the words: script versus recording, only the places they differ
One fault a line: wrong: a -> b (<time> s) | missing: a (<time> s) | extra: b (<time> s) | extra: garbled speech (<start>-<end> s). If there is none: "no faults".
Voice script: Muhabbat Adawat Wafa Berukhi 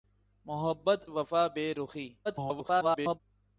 missing: Adawat (1.1 s)
extra: garbled speech (2.2-3.2 s)